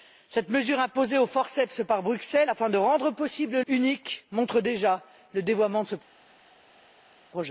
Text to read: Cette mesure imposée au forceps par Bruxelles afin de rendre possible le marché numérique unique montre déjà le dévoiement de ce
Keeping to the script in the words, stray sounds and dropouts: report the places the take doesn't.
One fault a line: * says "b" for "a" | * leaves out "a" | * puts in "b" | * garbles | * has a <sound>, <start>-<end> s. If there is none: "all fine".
* leaves out "le marché numérique"